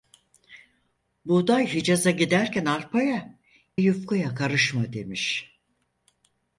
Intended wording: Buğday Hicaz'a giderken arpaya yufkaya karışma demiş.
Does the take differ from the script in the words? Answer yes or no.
no